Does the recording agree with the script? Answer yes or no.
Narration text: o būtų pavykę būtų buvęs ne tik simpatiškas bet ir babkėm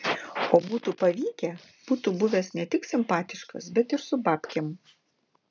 no